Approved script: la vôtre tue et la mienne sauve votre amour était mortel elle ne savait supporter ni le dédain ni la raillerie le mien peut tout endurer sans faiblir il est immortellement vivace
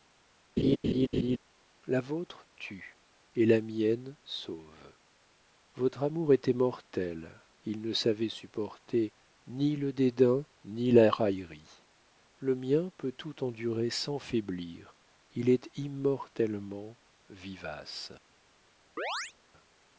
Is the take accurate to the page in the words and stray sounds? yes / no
no